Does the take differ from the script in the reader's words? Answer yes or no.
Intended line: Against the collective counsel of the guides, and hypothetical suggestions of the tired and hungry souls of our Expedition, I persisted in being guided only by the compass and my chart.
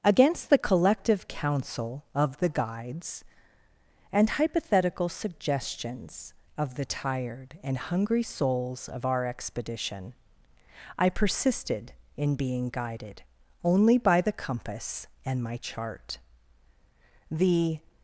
yes